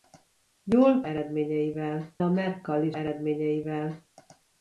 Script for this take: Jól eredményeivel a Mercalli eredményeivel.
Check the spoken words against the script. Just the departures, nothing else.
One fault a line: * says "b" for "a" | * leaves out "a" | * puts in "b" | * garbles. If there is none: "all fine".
all fine